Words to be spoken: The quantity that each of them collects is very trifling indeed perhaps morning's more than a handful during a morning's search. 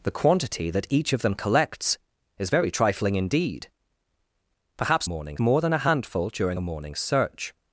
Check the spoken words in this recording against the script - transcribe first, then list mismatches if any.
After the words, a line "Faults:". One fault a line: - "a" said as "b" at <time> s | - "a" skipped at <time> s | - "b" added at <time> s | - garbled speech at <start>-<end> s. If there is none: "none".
The quantity that each of them collects is very trifling indeed perhaps morning's more than a handful during a morning's search.
Faults:
none